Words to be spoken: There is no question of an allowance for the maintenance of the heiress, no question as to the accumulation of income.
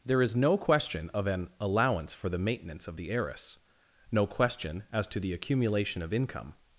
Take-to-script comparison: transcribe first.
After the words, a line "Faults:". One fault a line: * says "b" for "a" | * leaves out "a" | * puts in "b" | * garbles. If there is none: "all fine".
There is no question of an allowance for the maintenance of the heiress, no question as to the accumulation of income.
Faults:
all fine